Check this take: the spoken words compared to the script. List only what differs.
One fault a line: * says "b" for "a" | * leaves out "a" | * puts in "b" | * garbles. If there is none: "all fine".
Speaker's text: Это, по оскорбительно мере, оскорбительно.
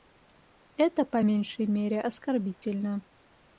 * says "меньшей" for "оскорбительно"